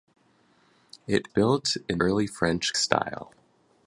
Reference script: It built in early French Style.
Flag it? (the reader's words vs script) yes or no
no